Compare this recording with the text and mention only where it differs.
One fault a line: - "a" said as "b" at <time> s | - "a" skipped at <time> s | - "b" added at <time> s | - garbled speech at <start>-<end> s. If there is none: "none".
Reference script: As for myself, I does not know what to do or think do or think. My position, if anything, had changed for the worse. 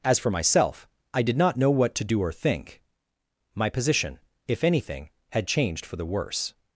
- "does" said as "did" at 1.2 s
- "do or think" skipped at 2.8 s